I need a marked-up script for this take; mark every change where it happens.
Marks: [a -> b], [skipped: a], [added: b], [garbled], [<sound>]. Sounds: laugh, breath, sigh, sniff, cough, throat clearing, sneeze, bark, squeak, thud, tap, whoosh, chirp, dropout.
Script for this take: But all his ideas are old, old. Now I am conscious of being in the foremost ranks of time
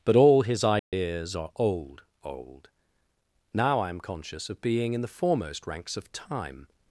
But all his ideas [dropout] are old, old. Now I am conscious of being in the foremost ranks of time